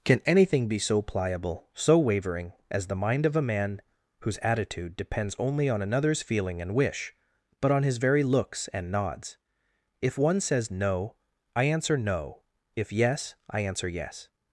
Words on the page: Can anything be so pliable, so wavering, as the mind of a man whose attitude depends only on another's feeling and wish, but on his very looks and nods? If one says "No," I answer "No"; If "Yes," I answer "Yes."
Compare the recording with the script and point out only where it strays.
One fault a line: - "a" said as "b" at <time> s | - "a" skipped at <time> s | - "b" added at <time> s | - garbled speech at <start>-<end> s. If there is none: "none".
none